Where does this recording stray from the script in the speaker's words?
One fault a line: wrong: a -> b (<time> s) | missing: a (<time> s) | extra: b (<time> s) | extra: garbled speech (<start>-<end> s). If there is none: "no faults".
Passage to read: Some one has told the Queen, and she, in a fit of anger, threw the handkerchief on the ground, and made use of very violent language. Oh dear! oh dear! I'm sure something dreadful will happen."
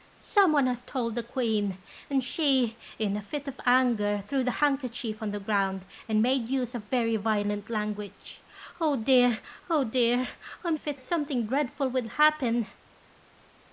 wrong: sure -> fit (10.7 s)